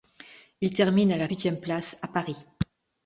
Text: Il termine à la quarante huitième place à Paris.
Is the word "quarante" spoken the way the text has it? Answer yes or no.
no